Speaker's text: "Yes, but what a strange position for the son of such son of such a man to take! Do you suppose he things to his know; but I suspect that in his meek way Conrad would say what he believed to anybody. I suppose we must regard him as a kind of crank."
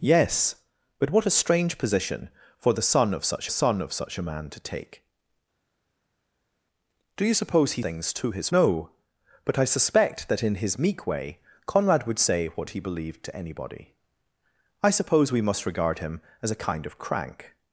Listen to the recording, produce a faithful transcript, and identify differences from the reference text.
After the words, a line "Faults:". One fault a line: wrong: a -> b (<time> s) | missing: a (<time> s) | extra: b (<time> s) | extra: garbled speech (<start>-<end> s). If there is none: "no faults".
"Yes, but what a strange position for the son of such son of such a man to take! Do you suppose he things to his know; but I suspect that in his meek way Conrad would say what he believed to anybody. I suppose we must regard him as a kind of crank."
Faults:
no faults